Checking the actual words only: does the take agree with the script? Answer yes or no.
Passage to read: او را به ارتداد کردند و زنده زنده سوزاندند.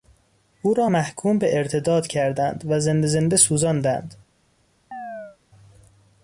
no